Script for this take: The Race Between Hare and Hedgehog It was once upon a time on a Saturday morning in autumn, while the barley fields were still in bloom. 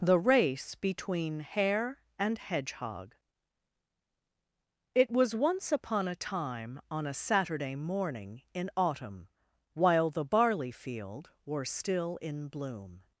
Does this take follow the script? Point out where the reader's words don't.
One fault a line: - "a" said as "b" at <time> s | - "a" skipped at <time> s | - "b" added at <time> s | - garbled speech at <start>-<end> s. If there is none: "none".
- "fields" said as "field" at 10.7 s